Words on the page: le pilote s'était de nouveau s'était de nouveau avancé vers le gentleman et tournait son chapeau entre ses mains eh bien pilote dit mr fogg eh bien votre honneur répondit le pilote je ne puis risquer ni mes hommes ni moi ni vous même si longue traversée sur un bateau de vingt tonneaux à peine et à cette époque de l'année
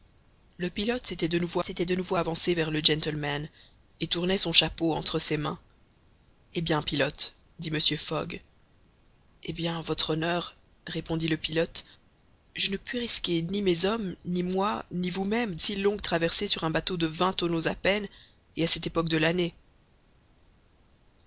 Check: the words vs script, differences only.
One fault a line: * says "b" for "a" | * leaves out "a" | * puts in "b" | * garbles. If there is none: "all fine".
all fine